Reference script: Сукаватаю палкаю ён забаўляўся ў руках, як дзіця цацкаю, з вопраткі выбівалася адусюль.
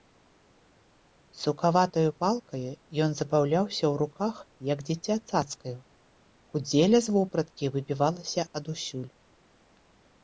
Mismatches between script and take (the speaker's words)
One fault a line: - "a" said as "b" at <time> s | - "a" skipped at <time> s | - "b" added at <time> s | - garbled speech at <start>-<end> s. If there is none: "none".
- "кудзеля" added at 6.5 s